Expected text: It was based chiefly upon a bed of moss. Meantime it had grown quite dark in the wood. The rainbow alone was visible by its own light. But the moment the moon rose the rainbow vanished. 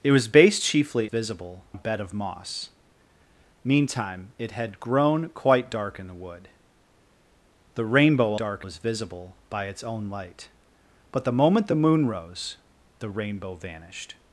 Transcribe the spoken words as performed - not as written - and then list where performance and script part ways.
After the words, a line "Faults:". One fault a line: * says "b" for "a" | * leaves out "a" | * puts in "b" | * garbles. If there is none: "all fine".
It was based chiefly visible a bed of moss. Meantime it had grown quite dark in the wood. The rainbow dark was visible by its own light. But the moment the moon rose the rainbow vanished.
Faults:
* says "visible" for "upon"
* says "dark" for "alone"